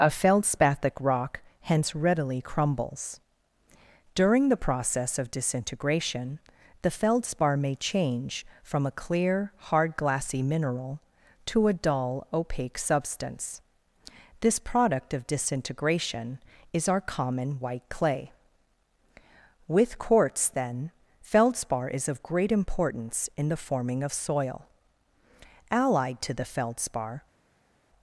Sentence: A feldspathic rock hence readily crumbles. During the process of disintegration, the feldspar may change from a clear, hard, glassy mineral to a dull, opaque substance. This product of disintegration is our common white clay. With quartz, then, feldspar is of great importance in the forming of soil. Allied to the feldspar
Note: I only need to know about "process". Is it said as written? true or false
true